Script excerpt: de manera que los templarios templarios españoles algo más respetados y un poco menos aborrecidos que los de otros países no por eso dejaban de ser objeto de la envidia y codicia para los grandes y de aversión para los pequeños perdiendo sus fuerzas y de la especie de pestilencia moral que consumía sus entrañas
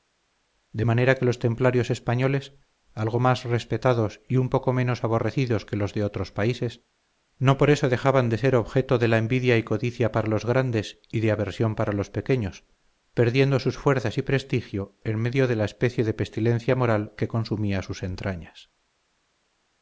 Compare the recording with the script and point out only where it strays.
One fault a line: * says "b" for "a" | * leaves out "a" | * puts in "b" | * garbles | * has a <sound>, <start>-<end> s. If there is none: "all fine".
* leaves out "templarios"
* puts in "prestigio en medio"